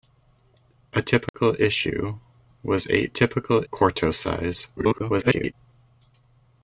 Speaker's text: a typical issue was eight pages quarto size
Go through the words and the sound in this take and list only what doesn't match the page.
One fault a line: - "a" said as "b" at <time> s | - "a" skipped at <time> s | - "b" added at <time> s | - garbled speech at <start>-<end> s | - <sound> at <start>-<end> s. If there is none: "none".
- dropout at 1.3-1.3 s
- "pages" said as "typical" at 3.1 s
- garbled speech at 4.8-5.5 s